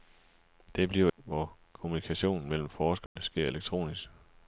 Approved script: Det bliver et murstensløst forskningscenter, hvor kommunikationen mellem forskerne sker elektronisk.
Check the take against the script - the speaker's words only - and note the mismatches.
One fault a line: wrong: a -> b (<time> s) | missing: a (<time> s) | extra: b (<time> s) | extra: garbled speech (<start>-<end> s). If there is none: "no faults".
missing: et murstensløst forskningscenter (1.1 s)